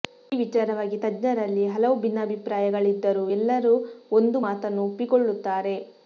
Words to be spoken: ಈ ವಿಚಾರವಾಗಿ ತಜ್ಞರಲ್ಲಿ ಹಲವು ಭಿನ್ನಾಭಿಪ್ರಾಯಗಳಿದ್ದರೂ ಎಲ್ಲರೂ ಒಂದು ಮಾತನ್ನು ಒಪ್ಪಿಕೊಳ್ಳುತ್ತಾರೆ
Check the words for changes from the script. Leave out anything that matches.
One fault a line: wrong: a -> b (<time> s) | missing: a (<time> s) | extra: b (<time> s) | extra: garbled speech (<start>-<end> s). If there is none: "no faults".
no faults